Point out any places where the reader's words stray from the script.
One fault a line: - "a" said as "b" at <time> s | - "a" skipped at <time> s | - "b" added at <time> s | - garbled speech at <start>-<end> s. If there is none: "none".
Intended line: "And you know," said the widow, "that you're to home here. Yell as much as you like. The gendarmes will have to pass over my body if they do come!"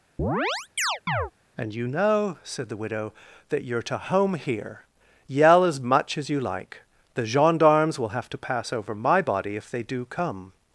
none